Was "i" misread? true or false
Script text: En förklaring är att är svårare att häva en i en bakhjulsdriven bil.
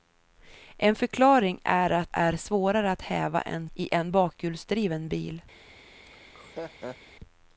false